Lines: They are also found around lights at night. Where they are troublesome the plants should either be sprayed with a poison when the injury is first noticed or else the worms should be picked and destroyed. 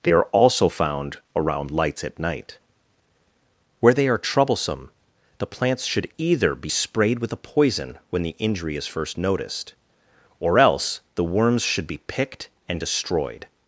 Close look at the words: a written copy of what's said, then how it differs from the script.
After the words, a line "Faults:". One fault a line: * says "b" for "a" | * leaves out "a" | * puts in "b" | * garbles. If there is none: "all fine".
They are also found around lights at night. Where they are troublesome the plants should either be sprayed with a poison when the injury is first noticed or else the worms should be picked and destroyed.
Faults:
all fine